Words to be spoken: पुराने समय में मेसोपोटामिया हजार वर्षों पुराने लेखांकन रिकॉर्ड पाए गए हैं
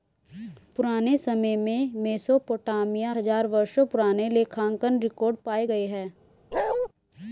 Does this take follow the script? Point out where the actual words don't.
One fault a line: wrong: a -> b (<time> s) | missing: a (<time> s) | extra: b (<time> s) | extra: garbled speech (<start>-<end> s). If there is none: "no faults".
no faults